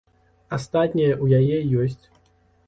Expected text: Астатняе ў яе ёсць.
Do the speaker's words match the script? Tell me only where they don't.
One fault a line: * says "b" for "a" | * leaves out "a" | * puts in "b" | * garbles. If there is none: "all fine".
all fine